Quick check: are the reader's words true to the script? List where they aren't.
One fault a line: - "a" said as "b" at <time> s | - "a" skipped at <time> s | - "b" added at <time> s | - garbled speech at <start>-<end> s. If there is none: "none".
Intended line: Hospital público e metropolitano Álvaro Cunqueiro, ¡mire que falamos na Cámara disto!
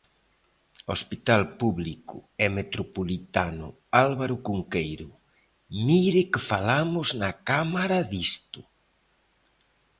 none